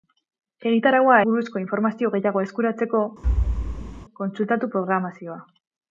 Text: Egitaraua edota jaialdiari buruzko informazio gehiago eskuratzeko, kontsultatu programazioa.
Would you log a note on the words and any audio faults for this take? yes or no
yes